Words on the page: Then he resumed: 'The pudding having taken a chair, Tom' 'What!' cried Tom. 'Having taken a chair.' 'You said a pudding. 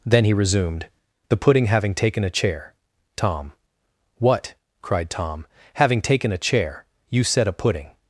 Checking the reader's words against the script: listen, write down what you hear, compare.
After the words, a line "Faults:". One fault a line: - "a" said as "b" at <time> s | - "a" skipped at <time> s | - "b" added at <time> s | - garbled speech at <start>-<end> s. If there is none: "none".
Then he resumed: 'The pudding having taken a chair, Tom' 'What!' cried Tom. 'Having taken a chair.' 'You said a pudding.
Faults:
none